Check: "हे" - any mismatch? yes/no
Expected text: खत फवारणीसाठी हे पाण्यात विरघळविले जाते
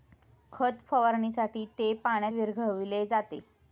yes